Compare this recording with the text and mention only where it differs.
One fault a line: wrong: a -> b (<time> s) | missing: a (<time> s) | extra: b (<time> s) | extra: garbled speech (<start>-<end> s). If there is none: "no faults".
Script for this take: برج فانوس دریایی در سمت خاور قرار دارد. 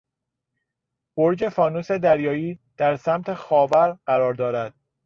no faults